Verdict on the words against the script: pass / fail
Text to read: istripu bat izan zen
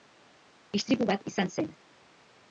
pass